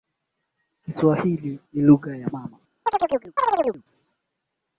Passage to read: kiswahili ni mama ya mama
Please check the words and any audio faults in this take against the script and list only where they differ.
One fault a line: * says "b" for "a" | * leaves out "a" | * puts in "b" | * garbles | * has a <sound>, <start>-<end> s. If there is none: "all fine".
* says "lugha" for "mama"
* has a chirp, 2.9-3.8 s